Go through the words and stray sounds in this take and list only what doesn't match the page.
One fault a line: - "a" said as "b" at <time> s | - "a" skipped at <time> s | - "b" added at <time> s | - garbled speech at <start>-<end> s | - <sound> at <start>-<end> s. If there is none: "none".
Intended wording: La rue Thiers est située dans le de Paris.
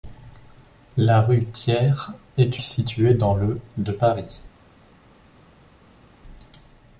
none